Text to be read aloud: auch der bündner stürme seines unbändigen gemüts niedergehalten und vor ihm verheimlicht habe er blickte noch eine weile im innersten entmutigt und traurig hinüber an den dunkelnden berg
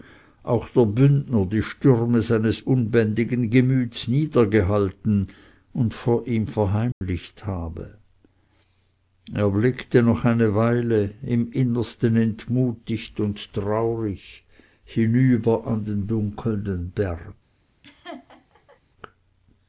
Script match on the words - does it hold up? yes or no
no